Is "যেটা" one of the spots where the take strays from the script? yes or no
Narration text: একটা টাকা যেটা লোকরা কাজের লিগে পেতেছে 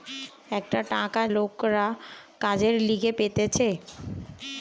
yes